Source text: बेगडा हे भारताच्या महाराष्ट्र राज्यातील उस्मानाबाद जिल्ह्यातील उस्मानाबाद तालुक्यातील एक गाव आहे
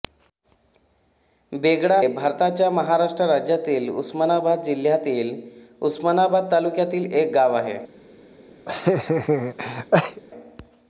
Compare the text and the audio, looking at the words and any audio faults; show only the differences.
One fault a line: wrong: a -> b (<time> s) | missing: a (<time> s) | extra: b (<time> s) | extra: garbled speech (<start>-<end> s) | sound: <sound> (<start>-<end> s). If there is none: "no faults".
missing: हे (2.0 s)
sound: laugh (8.7-10.2 s)